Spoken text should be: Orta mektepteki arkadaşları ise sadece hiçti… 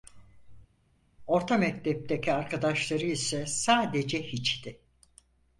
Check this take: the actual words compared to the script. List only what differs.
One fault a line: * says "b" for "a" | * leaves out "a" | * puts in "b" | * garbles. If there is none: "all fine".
all fine